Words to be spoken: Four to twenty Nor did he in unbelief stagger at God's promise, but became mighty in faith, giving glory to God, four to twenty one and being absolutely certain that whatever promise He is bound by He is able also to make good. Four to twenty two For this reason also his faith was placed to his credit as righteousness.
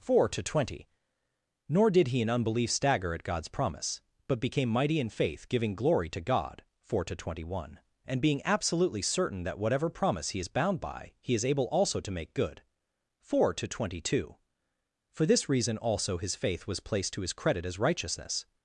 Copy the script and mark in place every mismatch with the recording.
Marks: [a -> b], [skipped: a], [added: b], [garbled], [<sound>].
Four to twenty Nor did he in unbelief stagger at God's promise, but became mighty in faith, giving glory to God, four to twenty one and being absolutely certain that whatever promise He is bound by He is able also to make good. Four to twenty two For this reason also his faith was placed to his credit as righteousness.